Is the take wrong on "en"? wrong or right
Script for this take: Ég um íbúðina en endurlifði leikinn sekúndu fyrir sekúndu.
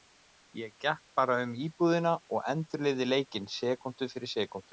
wrong